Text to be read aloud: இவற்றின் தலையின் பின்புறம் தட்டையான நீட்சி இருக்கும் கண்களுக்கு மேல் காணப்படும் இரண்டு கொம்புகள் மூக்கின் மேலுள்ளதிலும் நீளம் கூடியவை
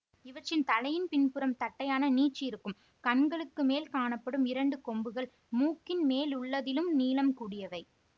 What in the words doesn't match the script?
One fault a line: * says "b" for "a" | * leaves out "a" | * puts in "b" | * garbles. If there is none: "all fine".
all fine